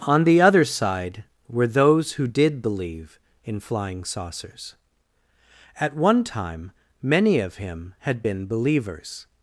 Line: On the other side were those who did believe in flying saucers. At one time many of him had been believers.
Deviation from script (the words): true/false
false